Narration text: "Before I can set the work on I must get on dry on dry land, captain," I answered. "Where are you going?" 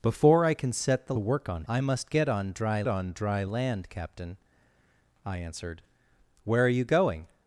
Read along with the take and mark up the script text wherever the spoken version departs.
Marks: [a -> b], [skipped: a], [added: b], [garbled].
"Before I can set the work on I must get on dry on dry land, captain," I answered. "Where are you going?"